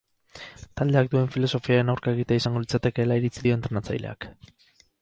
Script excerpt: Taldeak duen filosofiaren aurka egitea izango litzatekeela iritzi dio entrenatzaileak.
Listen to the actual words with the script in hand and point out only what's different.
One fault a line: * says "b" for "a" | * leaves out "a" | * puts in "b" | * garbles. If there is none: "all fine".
all fine